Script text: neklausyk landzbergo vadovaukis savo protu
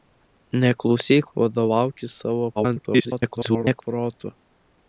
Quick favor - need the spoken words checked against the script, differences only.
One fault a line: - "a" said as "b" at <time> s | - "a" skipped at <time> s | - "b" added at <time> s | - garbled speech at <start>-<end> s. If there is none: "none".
- "landzbergo" skipped at 1.3 s
- garbled speech at 2.6-3.8 s